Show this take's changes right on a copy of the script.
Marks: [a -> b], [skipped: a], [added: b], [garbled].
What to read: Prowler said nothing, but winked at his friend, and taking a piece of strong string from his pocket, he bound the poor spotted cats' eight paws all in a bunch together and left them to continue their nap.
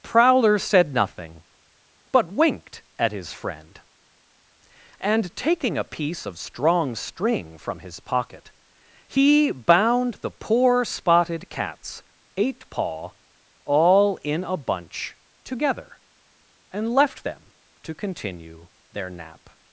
Prowler said nothing, but winked at his friend, and taking a piece of strong string from his pocket, he bound the poor spotted cats' eight [paws -> paw] all in a bunch together and left them to continue their nap.